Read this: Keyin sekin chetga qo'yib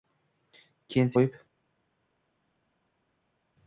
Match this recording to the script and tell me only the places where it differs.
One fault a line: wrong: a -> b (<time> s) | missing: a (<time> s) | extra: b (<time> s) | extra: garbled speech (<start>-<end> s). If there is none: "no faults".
missing: sekin chetga (1.1 s)